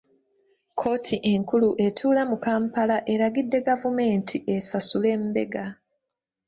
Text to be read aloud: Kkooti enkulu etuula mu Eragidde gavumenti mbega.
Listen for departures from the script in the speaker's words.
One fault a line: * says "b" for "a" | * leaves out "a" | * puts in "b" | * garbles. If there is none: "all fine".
* puts in "Kampala"
* puts in "esasule"